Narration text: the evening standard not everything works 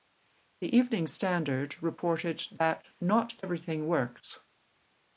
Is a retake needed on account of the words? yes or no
yes